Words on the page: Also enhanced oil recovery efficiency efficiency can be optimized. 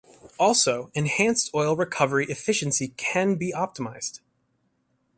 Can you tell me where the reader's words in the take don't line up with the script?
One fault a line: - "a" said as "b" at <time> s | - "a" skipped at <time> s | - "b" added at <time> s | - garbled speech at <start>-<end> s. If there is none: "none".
- "efficiency" skipped at 2.9 s